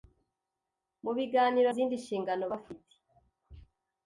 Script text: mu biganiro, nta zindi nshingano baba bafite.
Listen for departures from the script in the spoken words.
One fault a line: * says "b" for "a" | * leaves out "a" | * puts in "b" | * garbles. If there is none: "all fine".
* leaves out "nta"
* leaves out "baba"